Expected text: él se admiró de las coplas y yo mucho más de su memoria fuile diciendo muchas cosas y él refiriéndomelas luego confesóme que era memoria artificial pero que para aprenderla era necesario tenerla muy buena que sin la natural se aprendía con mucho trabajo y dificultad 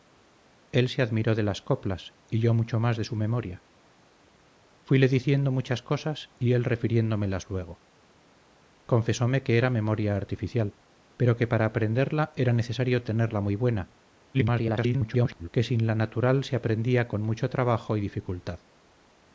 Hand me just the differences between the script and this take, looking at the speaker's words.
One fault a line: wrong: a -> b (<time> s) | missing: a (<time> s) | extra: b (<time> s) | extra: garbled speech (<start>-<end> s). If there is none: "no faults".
extra: garbled speech (14.3-15.5 s)